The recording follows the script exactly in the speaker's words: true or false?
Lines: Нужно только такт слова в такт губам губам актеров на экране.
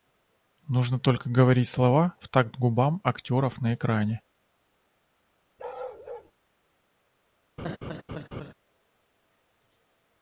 false